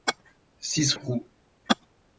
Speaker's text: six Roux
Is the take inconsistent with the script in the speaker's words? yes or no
no